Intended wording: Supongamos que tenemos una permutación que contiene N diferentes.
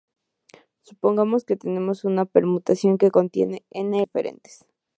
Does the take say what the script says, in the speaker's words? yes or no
yes